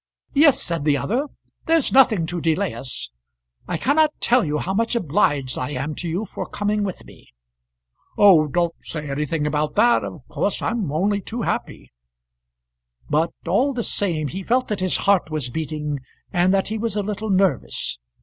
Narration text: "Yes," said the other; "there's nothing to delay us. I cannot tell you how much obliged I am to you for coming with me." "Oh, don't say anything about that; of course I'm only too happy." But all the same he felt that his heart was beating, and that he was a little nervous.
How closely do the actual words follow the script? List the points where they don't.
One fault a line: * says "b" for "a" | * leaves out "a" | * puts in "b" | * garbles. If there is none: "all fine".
all fine